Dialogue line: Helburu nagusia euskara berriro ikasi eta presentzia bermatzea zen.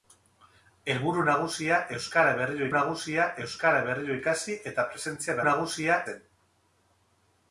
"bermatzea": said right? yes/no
no